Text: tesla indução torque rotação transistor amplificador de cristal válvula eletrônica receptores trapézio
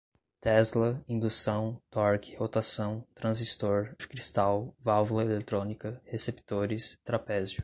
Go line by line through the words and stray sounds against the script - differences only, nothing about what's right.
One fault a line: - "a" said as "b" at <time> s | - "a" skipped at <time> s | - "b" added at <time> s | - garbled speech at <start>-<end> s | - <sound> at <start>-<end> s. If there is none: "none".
- "amplificador" skipped at 3.9 s